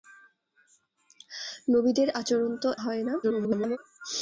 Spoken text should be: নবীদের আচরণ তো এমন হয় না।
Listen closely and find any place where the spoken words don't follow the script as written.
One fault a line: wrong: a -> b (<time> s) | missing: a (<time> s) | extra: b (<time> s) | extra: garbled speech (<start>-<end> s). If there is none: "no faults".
missing: এমন (2.7 s)
extra: garbled speech (3.2-3.8 s)